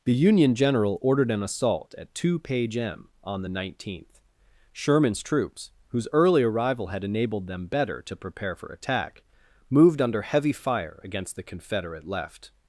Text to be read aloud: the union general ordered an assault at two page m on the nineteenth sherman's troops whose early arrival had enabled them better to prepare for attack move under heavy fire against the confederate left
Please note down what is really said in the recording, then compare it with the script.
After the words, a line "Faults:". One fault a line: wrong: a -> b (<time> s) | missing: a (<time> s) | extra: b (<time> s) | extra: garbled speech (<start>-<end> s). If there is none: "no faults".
the union general ordered an assault at two page m on the nineteenth sherman's troops whose early arrival had enabled them better to prepare for attack moved under heavy fire against the confederate left
Faults:
wrong: move -> moved (9.7 s)